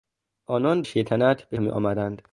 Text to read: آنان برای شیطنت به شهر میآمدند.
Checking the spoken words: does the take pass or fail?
fail